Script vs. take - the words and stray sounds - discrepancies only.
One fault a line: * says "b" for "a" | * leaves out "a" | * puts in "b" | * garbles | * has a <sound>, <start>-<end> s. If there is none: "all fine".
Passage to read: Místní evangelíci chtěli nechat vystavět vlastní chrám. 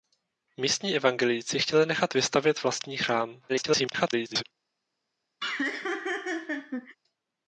* garbles
* has a laugh, 5.4-7.0 s